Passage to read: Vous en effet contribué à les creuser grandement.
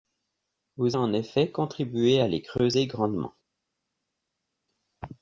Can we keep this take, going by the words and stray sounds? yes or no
yes